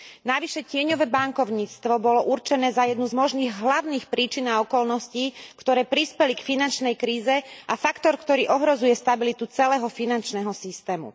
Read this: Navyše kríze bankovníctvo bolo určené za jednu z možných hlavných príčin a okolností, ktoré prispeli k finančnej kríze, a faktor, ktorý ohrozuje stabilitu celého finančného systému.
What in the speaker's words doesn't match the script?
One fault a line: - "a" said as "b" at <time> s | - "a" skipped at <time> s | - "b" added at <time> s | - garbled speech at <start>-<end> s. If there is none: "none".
- "kríze" said as "tieňové" at 0.6 s